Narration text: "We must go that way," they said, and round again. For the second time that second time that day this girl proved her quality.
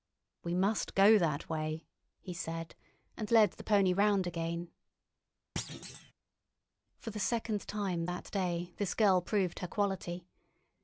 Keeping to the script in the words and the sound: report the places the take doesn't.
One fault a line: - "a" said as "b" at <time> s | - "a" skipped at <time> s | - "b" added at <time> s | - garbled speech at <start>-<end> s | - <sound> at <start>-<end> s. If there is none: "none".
- "they" said as "he" at 2.2 s
- "led the pony" added at 3.3 s
- thud at 5.6-6.1 s
- "second time that" skipped at 8.3 s